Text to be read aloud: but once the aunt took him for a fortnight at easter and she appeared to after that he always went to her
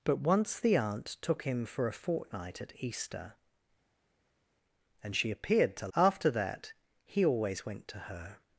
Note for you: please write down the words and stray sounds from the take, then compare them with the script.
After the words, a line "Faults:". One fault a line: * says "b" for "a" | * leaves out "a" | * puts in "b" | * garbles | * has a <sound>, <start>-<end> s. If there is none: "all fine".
but once the aunt took him for a fortnight at easter and she appeared to after that he always went to her
Faults:
all fine